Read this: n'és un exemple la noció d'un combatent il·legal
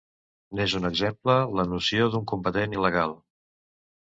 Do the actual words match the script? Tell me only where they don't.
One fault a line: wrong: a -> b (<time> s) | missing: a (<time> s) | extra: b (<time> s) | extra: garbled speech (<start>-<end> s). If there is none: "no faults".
no faults